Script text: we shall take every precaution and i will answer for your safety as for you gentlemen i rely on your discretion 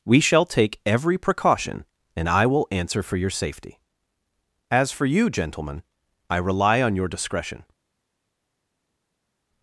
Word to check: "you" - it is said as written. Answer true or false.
true